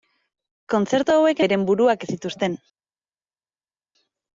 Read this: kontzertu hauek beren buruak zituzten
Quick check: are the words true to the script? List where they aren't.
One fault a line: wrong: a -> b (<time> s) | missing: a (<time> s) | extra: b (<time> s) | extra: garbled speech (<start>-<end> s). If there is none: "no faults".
no faults